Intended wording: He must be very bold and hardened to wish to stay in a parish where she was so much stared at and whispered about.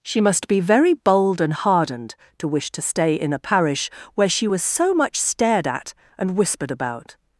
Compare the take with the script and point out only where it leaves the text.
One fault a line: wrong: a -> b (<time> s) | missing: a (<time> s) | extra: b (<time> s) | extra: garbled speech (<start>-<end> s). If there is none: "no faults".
wrong: He -> She (0.0 s)